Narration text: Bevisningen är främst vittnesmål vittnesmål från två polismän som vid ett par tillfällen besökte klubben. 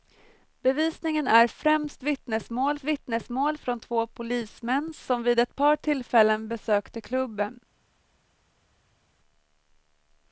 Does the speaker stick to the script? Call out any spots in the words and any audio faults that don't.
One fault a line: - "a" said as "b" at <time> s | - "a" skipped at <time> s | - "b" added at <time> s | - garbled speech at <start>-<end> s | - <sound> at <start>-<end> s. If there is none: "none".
none